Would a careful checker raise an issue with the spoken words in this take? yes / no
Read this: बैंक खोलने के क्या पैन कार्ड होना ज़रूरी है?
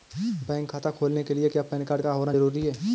yes